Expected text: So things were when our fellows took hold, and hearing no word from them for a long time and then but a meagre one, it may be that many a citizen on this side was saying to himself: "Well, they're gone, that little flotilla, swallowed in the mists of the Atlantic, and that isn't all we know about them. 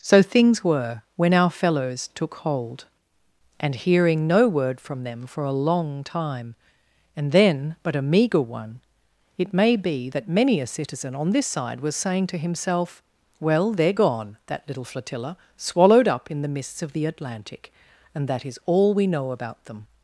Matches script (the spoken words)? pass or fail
fail